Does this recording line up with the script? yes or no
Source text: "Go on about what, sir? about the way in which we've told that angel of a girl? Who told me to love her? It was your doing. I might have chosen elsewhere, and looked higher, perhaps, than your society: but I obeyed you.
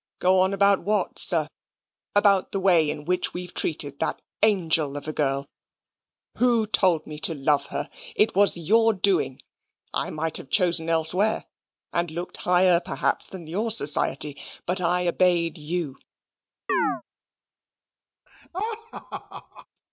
no